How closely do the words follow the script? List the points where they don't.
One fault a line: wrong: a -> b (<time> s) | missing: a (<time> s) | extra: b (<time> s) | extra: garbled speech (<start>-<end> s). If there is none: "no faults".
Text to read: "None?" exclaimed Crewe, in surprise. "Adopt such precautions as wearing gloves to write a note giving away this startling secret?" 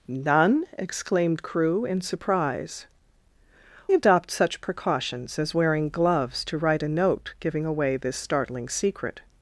no faults